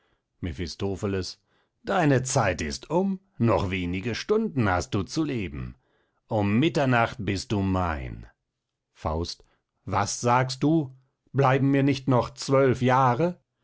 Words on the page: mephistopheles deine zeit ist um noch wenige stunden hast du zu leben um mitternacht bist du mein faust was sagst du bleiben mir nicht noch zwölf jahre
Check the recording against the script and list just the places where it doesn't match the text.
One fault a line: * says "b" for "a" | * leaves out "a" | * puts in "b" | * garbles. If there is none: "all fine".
all fine